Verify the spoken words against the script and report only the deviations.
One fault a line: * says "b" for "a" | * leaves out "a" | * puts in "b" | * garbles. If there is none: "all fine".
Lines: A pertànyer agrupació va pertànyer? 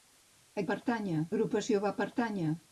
all fine